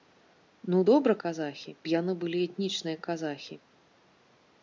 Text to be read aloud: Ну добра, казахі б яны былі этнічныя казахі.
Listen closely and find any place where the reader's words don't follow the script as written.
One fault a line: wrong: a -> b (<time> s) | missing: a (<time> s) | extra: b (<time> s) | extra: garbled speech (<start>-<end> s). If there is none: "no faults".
no faults